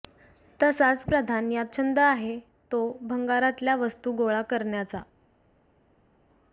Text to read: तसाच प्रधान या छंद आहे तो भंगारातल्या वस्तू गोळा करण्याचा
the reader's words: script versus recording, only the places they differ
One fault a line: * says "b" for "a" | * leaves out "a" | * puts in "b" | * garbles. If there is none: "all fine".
all fine